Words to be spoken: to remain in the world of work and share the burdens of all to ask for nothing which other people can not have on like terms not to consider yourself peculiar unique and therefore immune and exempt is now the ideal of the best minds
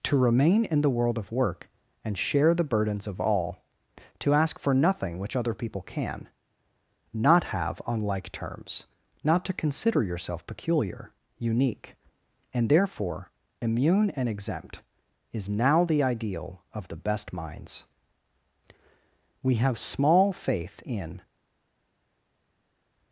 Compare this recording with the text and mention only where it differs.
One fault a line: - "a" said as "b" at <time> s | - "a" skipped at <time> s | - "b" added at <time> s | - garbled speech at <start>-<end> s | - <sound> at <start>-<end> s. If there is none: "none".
- "we have small faith in" added at 19.4 s